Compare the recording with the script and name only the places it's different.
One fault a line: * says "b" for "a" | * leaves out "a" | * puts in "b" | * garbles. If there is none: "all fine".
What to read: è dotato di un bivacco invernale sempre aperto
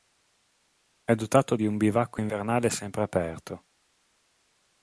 all fine